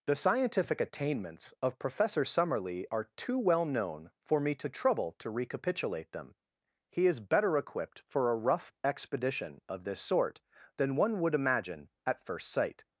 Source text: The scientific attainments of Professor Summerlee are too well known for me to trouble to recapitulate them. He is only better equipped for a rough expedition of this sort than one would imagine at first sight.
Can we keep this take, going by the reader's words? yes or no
no